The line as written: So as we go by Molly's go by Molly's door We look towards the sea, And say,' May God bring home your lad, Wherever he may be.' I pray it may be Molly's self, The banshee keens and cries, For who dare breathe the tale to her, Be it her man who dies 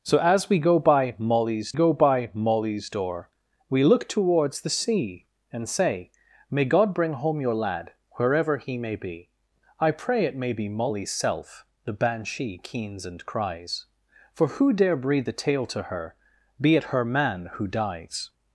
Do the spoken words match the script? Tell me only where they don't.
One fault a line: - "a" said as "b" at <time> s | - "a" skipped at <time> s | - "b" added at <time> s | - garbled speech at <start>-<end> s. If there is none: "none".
none